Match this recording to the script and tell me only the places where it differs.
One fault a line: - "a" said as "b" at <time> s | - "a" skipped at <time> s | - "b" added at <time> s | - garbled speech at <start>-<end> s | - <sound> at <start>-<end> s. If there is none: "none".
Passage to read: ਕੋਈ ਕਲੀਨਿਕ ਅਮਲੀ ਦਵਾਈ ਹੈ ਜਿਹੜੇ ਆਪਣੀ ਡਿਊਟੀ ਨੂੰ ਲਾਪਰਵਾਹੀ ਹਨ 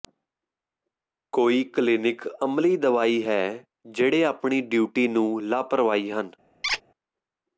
- squeak at 6.6-6.8 s